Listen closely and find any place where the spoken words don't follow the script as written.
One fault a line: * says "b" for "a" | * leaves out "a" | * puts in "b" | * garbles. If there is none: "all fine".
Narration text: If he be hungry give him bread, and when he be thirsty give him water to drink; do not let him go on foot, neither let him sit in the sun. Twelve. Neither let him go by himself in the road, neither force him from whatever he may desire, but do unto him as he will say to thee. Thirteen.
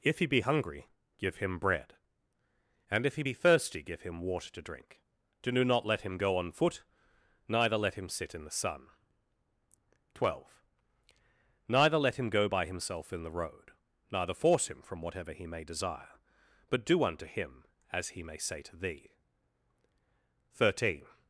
* says "if" for "when"
* says "may" for "will"